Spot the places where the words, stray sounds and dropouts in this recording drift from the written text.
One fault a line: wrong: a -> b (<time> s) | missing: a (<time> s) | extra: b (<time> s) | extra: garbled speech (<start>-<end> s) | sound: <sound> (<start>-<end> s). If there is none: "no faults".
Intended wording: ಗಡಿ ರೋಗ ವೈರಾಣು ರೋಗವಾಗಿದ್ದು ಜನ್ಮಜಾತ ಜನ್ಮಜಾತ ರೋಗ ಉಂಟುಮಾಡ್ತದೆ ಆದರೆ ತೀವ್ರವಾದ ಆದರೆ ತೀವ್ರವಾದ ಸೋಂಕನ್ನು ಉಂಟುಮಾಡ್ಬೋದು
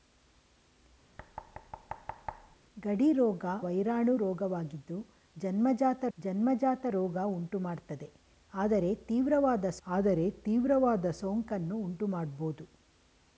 sound: thud (1.2-2.6 s)